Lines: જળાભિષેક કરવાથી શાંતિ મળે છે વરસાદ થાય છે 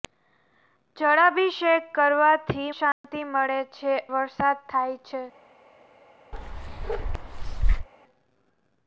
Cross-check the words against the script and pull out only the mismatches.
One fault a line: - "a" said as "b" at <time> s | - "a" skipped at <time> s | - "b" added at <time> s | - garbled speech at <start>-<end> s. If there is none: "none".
none